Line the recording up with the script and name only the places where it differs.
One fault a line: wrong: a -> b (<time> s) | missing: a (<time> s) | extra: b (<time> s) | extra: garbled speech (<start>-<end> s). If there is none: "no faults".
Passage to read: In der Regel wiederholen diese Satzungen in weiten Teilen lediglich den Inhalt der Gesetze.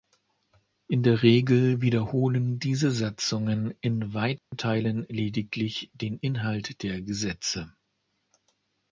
no faults